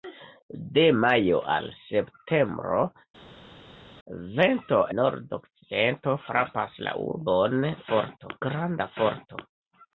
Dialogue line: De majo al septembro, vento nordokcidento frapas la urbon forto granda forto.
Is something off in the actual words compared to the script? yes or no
no